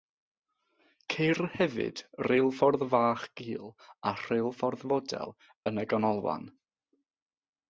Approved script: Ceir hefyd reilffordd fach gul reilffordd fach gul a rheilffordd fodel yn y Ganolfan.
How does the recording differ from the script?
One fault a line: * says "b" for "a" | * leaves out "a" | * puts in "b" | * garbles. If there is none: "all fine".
* leaves out "reilffordd fach gul"